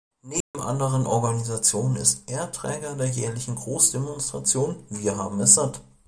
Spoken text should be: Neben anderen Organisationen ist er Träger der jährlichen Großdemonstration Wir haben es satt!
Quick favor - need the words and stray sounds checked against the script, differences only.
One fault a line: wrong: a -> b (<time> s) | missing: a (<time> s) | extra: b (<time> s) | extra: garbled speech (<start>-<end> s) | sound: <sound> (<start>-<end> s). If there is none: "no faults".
sound: dropout (0.4-0.5 s)